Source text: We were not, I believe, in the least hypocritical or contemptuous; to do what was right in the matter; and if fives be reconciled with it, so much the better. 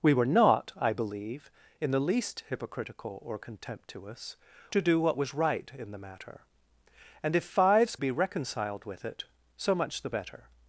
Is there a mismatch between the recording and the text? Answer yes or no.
no